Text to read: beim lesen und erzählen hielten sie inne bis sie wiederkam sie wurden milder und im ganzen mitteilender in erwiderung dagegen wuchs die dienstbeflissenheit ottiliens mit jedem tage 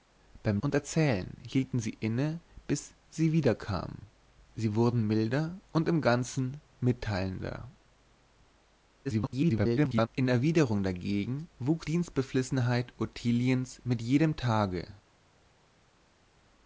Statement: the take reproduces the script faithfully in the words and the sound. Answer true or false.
false